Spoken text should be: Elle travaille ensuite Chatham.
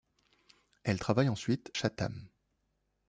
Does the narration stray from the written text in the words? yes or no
no